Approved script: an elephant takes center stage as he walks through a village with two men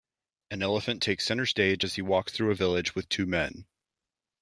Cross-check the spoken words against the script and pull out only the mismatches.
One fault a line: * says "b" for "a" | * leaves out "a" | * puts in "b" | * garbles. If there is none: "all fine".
all fine